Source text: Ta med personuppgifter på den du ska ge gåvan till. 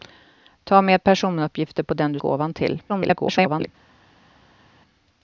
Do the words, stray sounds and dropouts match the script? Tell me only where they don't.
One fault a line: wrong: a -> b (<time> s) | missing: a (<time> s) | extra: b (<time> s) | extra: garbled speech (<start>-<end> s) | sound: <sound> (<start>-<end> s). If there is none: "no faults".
missing: ska ge (2.2 s)
extra: garbled speech (2.9-3.7 s)